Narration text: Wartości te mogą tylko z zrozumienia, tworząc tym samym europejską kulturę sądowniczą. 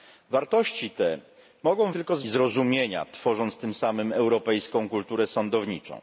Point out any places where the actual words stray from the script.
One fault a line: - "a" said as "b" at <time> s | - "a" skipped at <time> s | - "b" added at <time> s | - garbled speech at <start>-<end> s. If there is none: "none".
none